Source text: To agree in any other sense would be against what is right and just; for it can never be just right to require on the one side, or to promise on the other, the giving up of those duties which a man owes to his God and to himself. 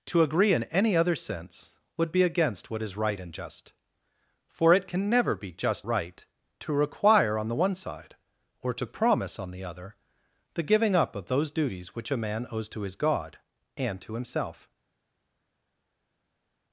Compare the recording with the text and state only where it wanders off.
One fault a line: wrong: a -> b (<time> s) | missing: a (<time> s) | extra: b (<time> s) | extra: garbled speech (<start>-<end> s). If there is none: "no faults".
no faults